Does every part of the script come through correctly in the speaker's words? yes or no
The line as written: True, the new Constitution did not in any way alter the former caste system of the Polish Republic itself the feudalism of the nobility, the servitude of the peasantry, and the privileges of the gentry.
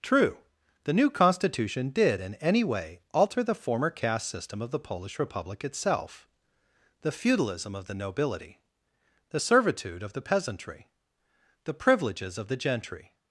no